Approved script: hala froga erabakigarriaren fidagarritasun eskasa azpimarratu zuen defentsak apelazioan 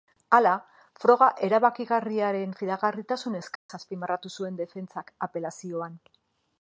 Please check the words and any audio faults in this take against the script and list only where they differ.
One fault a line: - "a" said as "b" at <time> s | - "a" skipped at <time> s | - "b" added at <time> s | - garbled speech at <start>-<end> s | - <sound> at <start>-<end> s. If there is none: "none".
- dropout at 3.6-3.7 s